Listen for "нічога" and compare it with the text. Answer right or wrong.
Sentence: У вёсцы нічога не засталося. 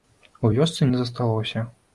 wrong